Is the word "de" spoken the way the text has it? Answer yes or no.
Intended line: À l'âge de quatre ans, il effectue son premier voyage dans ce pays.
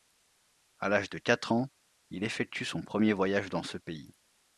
yes